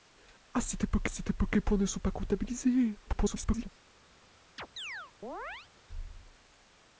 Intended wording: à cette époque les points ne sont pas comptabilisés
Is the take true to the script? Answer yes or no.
no